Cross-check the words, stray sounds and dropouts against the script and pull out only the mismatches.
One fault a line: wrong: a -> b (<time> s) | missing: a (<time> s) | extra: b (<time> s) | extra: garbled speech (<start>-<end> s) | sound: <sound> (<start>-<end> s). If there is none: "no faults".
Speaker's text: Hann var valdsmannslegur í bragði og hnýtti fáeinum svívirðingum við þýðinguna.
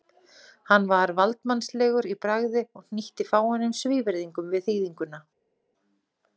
no faults